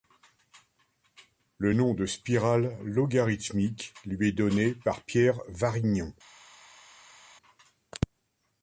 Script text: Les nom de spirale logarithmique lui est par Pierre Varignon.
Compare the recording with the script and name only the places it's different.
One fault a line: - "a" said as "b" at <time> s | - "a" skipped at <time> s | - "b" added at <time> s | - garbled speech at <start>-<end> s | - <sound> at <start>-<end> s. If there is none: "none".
- "Les" said as "Le" at 1.6 s
- "donné" added at 4.3 s